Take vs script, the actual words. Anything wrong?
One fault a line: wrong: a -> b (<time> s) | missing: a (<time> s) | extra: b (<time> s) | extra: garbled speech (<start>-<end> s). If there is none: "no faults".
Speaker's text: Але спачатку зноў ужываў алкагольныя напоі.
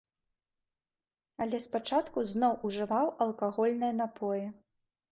no faults